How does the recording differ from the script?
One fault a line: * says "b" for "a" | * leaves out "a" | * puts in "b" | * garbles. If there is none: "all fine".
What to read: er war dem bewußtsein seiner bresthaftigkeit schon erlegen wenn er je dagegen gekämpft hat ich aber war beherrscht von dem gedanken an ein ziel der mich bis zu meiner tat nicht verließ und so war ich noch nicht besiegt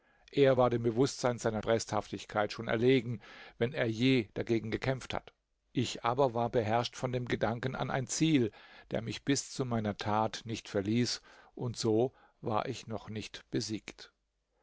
all fine